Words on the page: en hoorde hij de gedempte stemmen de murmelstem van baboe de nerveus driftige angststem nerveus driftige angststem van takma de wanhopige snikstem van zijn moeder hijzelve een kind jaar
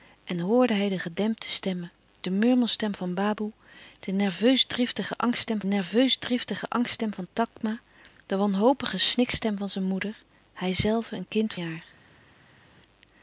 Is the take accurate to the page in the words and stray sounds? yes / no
yes